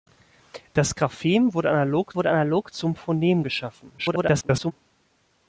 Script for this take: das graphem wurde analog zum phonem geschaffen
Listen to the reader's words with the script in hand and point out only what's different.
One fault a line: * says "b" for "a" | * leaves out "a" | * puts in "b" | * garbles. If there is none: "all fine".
* puts in "wurde analog"
* garbles